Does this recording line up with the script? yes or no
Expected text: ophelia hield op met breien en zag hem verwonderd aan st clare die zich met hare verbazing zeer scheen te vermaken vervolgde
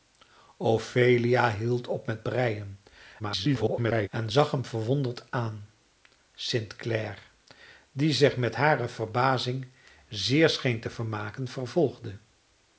no